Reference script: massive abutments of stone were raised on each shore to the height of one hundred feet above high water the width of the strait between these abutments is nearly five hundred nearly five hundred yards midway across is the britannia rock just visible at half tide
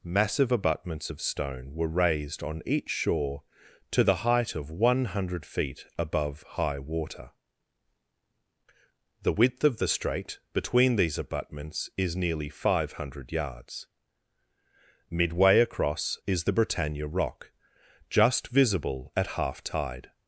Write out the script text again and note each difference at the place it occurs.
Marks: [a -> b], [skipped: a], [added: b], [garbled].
massive abutments of stone were raised on each shore to the height of one hundred feet above high water the width of the strait between these abutments is nearly five hundred [skipped: nearly five hundred] yards midway across is the britannia rock just visible at half tide